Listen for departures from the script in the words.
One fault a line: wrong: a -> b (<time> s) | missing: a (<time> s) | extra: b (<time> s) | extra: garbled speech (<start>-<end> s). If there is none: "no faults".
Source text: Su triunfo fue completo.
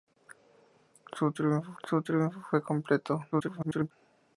extra: su triunfo (1.8 s)
extra: garbled speech (3.3-3.9 s)